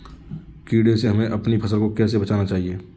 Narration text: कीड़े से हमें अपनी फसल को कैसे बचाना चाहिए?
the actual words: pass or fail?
pass